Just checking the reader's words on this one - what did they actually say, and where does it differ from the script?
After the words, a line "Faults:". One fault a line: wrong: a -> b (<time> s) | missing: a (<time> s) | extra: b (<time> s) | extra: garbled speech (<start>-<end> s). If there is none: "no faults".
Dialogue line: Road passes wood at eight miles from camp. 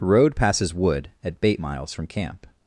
Road passes wood at bait miles from camp.
Faults:
wrong: eight -> bait (1.4 s)